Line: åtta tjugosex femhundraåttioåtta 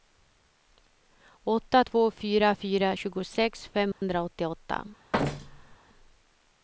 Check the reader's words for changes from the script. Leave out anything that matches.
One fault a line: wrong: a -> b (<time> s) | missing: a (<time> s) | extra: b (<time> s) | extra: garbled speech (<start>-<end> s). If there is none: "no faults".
extra: två fyra fyra (1.8 s)